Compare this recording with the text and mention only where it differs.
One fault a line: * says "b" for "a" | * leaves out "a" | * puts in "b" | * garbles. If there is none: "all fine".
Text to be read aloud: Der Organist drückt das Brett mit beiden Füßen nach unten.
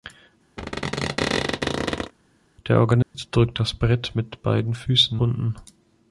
* leaves out "nach"